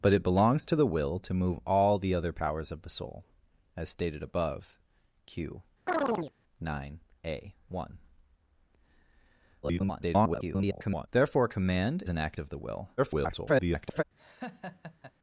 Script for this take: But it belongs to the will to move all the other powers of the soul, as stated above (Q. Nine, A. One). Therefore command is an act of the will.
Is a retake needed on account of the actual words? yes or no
yes